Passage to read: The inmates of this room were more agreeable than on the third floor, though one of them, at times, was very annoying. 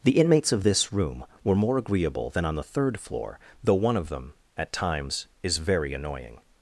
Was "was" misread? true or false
true